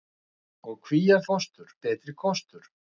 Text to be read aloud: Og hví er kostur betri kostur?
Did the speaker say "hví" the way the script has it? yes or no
yes